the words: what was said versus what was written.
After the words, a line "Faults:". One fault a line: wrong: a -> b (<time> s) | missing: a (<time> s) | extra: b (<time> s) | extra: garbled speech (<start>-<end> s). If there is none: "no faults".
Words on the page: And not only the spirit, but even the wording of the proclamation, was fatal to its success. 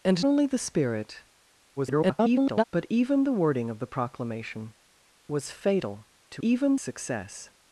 And only the spirit, [garbled] but even the wording of the proclamation, was fatal to even success.
Faults:
missing: not (0.2 s)
extra: garbled speech (1.8-2.6 s)
wrong: its -> even (6.4 s)